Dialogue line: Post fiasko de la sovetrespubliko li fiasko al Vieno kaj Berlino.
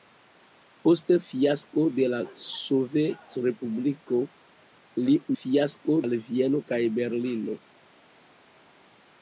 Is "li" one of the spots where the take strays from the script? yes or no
no